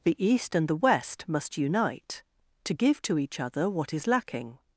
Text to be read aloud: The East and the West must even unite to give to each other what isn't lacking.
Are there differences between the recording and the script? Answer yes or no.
yes